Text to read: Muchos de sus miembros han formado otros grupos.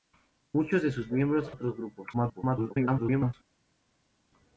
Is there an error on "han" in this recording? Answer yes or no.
yes